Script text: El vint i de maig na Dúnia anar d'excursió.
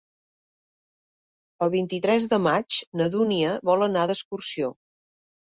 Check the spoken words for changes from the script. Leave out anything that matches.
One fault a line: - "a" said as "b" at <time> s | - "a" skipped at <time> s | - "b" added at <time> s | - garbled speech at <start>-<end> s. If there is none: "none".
- "tres" added at 2.1 s
- "vol" added at 3.7 s